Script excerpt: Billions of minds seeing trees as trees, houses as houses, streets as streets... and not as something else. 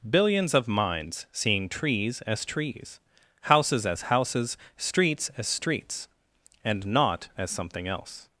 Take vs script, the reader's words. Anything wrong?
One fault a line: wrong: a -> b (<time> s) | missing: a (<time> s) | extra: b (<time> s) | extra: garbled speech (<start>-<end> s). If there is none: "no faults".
no faults